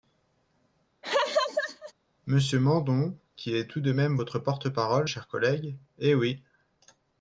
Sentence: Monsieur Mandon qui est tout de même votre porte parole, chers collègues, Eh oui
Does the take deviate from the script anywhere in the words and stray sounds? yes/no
yes